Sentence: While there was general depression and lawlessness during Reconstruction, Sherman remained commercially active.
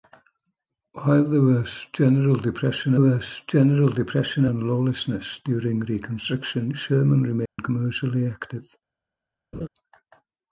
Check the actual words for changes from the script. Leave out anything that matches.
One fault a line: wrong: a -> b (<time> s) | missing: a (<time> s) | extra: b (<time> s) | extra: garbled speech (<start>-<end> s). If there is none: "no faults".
extra: was general depression (3.0 s)